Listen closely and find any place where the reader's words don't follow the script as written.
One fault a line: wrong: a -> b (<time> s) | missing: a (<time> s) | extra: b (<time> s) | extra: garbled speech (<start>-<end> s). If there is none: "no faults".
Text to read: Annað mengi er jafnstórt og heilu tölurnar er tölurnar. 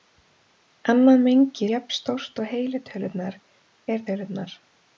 no faults